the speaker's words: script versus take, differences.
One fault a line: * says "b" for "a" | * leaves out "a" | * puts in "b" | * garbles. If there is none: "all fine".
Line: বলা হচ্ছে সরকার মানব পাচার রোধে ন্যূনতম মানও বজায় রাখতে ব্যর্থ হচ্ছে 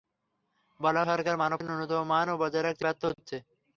* leaves out "হচ্ছে"
* leaves out "পাচার রোধে"